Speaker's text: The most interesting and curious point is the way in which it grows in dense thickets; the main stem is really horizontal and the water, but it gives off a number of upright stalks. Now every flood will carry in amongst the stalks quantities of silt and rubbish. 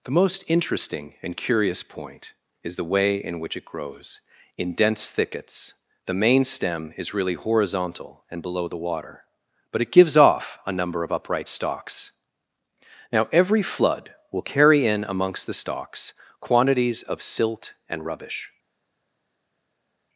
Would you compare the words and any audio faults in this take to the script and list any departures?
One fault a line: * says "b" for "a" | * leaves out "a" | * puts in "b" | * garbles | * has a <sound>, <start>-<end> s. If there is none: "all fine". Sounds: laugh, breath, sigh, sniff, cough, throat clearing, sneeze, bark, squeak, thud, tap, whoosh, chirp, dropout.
* puts in "below"